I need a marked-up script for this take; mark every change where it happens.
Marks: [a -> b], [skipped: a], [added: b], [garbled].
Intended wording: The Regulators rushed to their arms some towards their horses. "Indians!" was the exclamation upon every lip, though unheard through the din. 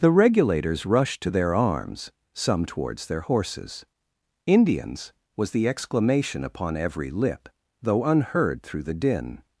The Regulators rushed to their arms some towards their horses. "Indians!" was the exclamation upon every lip, though unheard through the din.